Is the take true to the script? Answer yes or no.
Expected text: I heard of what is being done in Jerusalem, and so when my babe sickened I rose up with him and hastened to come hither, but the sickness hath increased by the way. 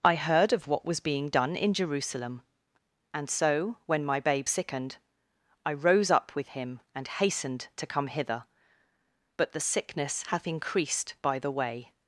no